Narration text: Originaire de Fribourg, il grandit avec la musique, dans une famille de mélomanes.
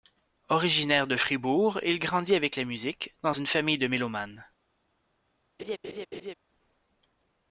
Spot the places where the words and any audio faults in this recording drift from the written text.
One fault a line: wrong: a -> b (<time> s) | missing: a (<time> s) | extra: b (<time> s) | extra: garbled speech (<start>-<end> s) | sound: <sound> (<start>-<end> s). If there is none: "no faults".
sound: laugh (5.6-6.3 s)